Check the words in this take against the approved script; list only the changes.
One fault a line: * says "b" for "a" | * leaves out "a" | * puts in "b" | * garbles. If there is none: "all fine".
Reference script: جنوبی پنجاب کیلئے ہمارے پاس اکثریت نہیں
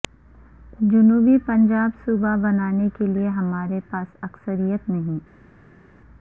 * puts in "صوبہ بنانے"